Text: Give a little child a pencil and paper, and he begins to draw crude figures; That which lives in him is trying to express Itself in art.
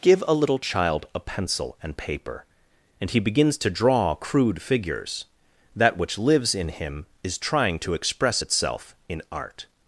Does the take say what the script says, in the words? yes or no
yes